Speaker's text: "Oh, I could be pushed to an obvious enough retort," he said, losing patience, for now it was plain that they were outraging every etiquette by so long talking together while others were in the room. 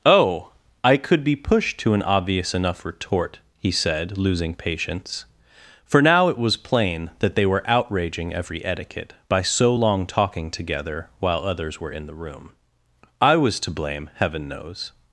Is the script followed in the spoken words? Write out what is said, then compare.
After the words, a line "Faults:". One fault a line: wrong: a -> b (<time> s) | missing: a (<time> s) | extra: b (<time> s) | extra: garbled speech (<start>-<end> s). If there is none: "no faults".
"Oh, I could be pushed to an obvious enough retort," he said, losing patience, for now it was plain that they were outraging every etiquette by so long talking together while others were in the room. "I was to blame, Heaven knows
Faults:
extra: I was to blame Heaven knows (13.2 s)